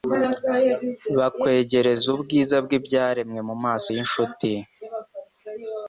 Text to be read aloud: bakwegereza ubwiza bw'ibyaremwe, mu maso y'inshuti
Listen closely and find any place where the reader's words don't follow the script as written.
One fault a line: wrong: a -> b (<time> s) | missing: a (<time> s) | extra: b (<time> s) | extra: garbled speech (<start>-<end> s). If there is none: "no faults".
no faults